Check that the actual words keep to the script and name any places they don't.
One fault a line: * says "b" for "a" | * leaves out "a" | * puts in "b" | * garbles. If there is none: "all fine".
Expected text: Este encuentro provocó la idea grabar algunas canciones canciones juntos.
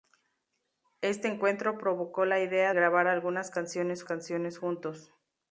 all fine